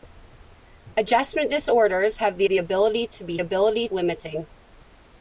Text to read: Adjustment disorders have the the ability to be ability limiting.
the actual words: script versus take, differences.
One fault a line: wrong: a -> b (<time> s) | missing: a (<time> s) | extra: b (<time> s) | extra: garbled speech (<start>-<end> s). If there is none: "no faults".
no faults